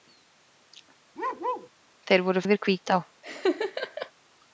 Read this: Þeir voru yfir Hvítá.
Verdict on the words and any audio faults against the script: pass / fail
fail